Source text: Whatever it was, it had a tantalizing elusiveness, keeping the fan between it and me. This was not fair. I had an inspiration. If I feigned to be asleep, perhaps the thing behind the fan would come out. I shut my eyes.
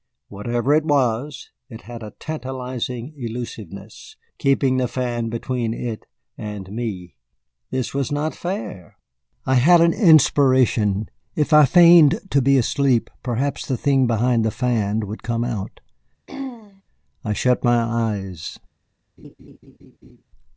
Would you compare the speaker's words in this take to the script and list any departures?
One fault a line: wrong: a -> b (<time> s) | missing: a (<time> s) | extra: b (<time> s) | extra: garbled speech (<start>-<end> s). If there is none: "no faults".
no faults